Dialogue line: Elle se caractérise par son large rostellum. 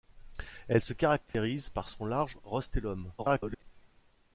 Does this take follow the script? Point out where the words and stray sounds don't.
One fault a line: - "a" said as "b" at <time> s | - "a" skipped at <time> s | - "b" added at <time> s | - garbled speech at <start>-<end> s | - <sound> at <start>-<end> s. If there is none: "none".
- dropout at 1.3-1.3 s
- garbled speech at 3.2-3.6 s